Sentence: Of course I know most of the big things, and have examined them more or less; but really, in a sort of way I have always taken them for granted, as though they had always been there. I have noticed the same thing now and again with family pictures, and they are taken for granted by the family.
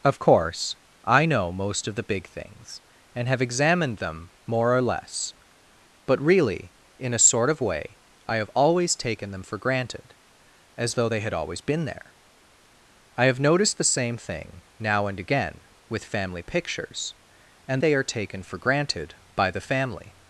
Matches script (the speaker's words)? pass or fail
pass